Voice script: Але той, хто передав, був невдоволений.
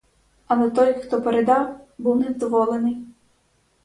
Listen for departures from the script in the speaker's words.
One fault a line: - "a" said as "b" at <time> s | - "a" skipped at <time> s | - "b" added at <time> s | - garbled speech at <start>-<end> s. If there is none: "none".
none